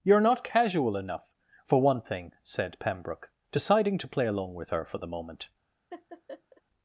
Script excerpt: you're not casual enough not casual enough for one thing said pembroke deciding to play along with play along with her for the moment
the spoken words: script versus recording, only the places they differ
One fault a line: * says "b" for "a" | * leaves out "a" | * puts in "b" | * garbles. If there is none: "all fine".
* leaves out "not casual enough"
* leaves out "play along with"